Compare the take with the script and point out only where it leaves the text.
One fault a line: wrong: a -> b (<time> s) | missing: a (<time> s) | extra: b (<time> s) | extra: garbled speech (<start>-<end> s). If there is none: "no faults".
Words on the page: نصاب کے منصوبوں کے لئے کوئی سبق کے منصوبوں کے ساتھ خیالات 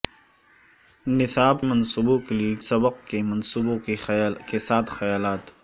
missing: کے (1.6 s)
missing: کوئی (2.5 s)